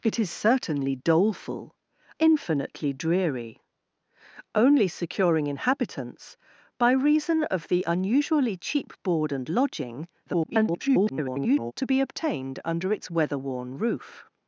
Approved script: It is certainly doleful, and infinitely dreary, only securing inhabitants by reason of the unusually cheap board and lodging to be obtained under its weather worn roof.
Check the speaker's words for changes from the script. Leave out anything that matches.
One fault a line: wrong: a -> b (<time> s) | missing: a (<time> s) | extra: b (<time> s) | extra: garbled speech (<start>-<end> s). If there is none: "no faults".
missing: and (1.8 s)
extra: garbled speech (10.3-11.7 s)